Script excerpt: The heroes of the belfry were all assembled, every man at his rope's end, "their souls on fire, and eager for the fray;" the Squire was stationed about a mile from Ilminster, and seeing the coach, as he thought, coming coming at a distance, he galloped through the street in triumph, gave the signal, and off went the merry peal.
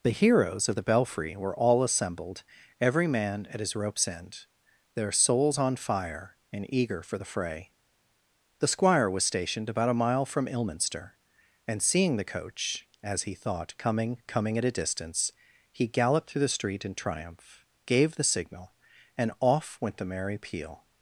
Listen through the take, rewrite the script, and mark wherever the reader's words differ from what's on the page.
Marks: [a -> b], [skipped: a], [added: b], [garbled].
The heroes of the belfry were all assembled, every man at his rope's end, "their souls on fire, and eager for the fray;" the Squire was stationed about a mile from Ilminster, and seeing the coach, as he thought, coming coming at a distance, he galloped through the street in triumph, gave the signal, and off went the merry peal.